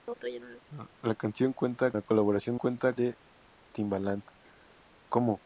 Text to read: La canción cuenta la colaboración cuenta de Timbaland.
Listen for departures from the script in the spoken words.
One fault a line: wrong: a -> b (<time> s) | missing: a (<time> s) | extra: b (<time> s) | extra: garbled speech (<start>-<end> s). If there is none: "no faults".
no faults